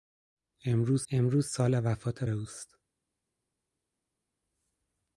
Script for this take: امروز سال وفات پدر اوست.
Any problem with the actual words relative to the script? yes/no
yes